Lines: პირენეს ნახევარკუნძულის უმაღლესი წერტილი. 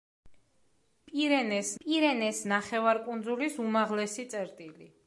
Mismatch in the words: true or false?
true